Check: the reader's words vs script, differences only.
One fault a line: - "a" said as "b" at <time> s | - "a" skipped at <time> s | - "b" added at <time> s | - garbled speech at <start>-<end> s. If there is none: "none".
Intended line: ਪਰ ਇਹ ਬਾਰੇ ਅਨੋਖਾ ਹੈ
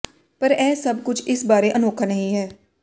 - "ਸਭ ਕੁਝ ਇਸ" added at 0.8 s
- "ਨਹੀਂ" added at 2.1 s